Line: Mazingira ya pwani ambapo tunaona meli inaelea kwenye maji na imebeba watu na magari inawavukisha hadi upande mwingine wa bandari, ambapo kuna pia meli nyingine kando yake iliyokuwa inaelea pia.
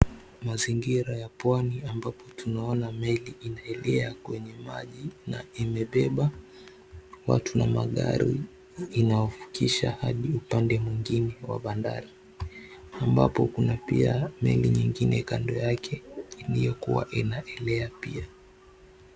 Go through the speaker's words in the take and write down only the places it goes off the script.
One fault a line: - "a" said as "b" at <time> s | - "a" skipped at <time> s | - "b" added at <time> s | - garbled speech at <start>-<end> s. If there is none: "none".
none